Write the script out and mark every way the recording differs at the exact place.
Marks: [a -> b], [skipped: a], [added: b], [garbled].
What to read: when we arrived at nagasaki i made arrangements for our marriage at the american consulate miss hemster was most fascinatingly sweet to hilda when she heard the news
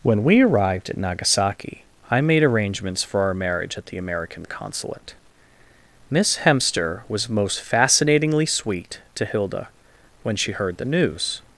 when we arrived at nagasaki i made arrangements for our marriage at the american consulate miss hemster was most fascinatingly sweet to hilda when she heard the news